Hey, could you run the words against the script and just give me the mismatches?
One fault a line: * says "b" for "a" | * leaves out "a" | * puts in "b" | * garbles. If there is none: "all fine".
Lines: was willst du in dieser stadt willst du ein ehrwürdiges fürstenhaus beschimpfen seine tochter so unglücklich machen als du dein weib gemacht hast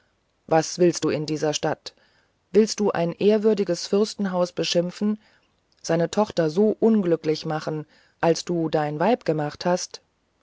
all fine